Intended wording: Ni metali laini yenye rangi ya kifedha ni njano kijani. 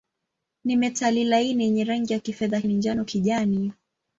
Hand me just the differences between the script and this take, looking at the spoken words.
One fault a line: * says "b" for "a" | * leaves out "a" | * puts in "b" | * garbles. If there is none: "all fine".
all fine